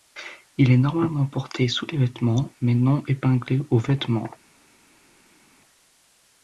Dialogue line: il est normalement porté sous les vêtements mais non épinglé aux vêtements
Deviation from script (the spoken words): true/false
false